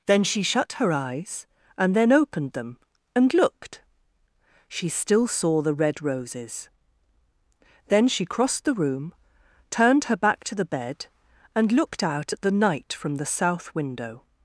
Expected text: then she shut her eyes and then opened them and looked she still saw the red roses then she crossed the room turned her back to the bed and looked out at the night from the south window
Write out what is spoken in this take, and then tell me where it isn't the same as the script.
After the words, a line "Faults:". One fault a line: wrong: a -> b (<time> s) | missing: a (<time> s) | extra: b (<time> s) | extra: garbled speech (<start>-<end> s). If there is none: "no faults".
then she shut her eyes and then opened them and looked she still saw the red roses then she crossed the room turned her back to the bed and looked out at the night from the south window
Faults:
no faults